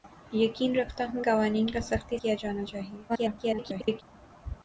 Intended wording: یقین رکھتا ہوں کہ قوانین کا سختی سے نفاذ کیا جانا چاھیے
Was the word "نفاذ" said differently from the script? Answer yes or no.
yes